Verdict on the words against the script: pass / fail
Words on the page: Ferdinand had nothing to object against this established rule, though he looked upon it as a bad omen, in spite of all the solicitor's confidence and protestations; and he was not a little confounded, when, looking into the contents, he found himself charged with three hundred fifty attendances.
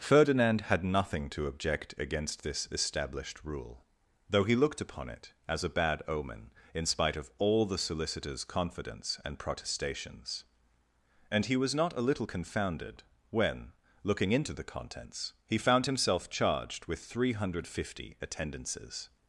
pass